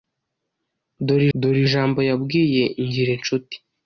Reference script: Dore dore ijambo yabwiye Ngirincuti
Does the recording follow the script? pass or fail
pass